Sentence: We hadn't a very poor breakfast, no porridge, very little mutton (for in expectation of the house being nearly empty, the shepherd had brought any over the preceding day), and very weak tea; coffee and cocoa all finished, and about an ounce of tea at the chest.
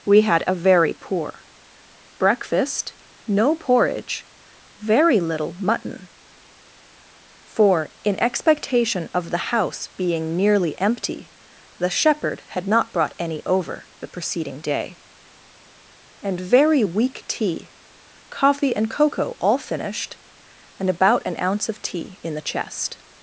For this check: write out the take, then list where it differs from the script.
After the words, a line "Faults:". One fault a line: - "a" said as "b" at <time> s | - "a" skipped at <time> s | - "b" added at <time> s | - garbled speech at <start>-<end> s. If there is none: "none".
We had a very poor breakfast, no porridge, very little mutton (for in expectation of the house being nearly empty, the shepherd had not brought any over the preceding day), and very weak tea; coffee and cocoa all finished, and about an ounce of tea in the chest.
Faults:
- "hadn't" said as "had" at 0.2 s
- "not" added at 12.7 s
- "at" said as "in" at 22.2 s